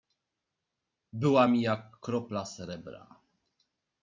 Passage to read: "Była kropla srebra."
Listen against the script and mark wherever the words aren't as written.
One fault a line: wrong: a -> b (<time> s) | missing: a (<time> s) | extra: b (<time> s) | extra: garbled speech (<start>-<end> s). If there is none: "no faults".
extra: mi jak (1.5 s)